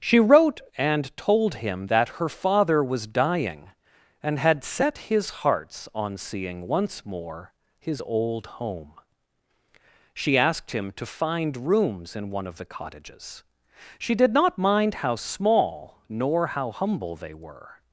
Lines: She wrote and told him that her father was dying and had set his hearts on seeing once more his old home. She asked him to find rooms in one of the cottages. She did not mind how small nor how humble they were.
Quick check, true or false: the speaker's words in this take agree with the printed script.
true